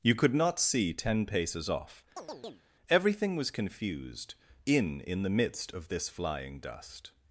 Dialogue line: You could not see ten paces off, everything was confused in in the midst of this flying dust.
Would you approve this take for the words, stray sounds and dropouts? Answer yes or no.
no